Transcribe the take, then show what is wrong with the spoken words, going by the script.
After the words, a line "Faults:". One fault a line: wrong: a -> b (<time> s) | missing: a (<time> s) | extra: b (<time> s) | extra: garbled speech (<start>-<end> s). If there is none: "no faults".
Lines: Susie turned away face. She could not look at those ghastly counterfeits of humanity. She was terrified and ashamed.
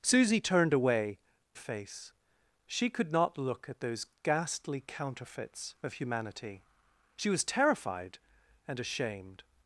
Susie turned away face. She could not look at those ghastly counterfeits of humanity. She was terrified and ashamed.
Faults:
no faults